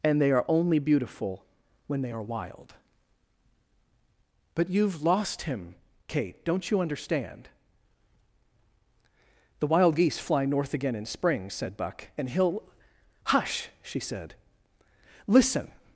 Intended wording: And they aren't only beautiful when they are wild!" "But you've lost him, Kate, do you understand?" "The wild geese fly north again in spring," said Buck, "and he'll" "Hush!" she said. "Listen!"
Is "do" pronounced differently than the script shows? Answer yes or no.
yes